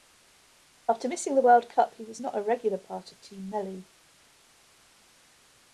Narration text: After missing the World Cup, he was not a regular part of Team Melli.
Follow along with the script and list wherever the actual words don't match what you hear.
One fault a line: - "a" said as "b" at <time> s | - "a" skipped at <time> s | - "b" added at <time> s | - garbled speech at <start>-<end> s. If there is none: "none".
none